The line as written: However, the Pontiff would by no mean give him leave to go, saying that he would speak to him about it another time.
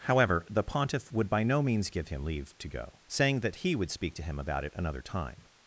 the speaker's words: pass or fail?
fail